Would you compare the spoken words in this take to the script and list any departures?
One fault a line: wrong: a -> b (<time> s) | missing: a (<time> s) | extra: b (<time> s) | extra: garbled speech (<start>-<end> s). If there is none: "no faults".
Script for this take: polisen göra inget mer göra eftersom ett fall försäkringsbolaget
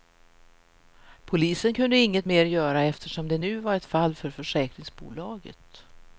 wrong: göra -> kunde (1.7 s)
extra: det nu var (3.3 s)
extra: för (4.2 s)